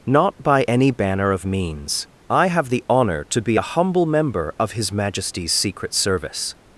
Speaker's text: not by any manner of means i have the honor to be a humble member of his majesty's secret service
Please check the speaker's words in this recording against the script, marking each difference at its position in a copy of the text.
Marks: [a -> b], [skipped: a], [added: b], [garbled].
not by any [manner -> banner] of means i have the honor to be a humble member of his majesty's secret service